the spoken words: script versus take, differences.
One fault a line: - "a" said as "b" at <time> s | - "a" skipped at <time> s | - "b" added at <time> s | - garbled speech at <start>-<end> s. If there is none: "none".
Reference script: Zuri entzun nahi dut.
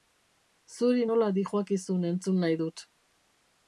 - "nola dihoakizun" added at 1.1 s